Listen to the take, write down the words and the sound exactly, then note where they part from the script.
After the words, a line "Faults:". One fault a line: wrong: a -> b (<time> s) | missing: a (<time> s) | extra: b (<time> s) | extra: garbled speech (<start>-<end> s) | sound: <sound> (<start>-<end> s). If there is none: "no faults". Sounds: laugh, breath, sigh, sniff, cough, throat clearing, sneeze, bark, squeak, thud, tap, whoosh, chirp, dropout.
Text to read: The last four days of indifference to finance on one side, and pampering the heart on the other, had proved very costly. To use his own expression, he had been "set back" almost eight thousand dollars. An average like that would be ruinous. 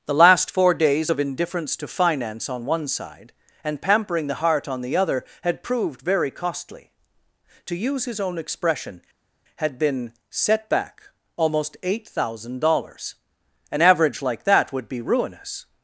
The last four days of indifference to finance on one side, and pampering the heart on the other, had proved very costly. To use his own expression, had been "set back" almost eight thousand dollars. An average like that would be ruinous.
Faults:
missing: he (9.0 s)